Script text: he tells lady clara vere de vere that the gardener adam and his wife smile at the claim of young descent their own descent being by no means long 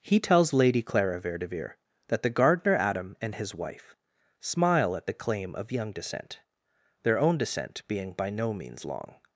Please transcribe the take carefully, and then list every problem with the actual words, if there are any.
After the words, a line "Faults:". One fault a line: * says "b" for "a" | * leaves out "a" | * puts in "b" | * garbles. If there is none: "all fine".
he tells lady clara vere de vere that the gardener adam and his wife smile at the claim of young descent their own descent being by no means long
Faults:
all fine